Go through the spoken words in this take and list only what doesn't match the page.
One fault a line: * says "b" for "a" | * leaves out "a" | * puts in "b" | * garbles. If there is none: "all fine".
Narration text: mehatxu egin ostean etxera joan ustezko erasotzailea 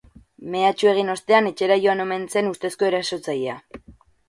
* puts in "omen zen"